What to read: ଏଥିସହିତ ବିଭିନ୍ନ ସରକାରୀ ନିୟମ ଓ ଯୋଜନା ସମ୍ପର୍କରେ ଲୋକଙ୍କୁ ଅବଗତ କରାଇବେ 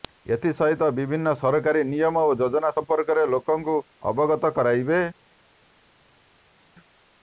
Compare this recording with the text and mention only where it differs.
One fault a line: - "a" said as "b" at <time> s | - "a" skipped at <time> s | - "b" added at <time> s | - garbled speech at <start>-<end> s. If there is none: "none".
none